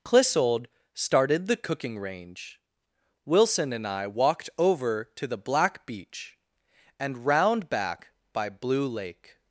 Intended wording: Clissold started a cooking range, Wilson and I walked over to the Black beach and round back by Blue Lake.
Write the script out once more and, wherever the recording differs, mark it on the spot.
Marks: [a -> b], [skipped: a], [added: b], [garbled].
Clissold started [a -> the] cooking range, Wilson and I walked over to the Black beach and round back by Blue Lake.